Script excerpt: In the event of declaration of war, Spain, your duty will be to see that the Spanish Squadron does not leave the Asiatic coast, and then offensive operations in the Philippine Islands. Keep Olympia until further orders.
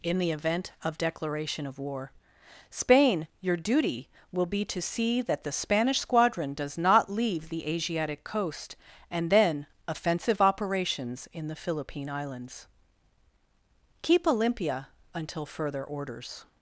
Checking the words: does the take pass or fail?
pass